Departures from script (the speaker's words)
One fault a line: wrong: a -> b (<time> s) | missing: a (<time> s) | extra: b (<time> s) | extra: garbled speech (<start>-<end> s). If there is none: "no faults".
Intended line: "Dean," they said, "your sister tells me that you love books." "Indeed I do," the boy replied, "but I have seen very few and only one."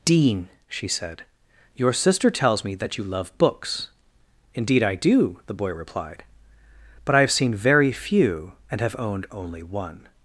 wrong: they -> she (0.7 s)
extra: have owned (8.8 s)